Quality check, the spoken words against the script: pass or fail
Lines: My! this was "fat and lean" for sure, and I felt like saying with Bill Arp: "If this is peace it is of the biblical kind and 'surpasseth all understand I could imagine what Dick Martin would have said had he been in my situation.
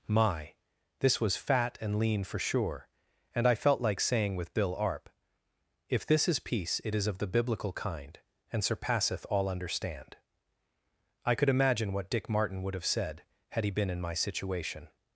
pass